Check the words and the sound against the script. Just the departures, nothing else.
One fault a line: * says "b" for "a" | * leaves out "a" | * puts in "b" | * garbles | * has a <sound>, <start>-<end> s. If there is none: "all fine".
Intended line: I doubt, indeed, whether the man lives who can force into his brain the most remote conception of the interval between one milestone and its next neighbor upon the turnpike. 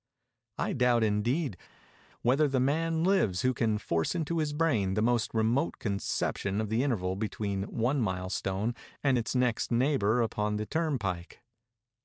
all fine